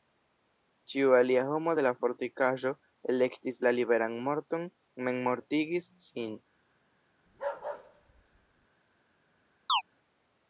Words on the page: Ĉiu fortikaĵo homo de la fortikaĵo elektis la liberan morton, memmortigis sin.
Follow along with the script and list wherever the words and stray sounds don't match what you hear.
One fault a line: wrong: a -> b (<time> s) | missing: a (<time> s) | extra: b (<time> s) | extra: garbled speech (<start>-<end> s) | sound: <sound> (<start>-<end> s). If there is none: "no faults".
wrong: fortikaĵo -> alia (1.2 s)
sound: bark (7.3-8.7 s)
sound: chirp (9.7-9.8 s)